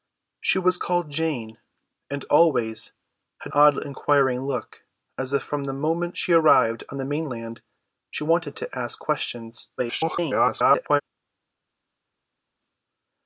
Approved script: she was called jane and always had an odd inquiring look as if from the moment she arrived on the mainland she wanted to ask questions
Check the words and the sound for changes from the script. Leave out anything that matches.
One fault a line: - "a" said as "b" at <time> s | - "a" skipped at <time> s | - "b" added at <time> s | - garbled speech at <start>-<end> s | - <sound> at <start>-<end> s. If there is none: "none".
- "an" skipped at 3.5 s
- garbled speech at 9.8-11.0 s